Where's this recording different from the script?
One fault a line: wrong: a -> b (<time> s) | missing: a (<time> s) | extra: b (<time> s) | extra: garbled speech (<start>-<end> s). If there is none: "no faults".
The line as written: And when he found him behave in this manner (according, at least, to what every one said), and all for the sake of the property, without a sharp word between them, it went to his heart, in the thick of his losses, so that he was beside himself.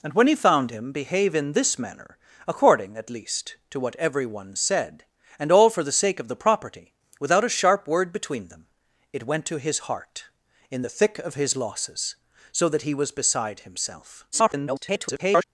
extra: garbled speech (14.3-15.4 s)